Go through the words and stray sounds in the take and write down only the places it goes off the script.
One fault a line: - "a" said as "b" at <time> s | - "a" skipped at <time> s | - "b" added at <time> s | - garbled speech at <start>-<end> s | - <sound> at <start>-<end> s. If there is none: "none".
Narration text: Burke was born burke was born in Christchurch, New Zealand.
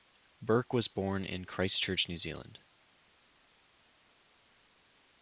- "burke was born" skipped at 1.2 s